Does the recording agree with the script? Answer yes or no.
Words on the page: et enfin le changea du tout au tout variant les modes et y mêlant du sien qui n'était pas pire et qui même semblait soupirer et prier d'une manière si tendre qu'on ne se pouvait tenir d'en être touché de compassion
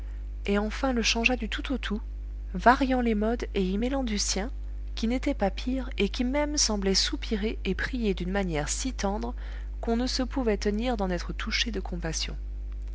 yes